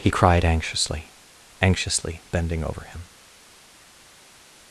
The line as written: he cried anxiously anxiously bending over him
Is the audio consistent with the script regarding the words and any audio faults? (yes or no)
yes